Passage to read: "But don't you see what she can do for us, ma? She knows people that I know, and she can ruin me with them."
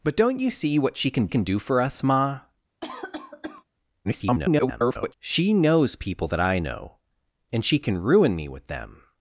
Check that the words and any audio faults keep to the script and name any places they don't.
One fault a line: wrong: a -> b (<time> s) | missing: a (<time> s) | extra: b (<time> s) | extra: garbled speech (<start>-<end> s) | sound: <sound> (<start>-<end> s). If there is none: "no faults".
extra: can (1.3 s)
sound: cough (2.8-3.6 s)
extra: garbled speech (4.0-5.1 s)